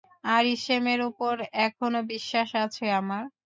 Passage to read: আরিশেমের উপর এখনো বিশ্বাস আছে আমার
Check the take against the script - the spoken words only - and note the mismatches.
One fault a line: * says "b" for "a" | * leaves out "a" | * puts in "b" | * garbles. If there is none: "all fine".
all fine